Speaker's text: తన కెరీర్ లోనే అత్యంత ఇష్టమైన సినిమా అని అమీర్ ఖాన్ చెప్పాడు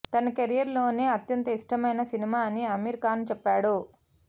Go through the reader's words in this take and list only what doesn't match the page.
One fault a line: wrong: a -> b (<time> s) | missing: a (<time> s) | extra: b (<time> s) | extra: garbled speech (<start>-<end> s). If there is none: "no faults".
no faults